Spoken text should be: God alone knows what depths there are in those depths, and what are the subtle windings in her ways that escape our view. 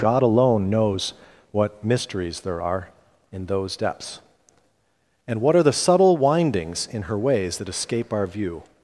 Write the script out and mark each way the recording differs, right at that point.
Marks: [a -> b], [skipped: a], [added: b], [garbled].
God alone knows what [depths -> mysteries] there are in those depths, and what are the subtle windings in her ways that escape our view.